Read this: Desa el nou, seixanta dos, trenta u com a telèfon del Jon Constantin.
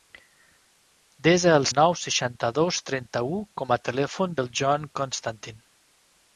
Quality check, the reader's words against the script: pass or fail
pass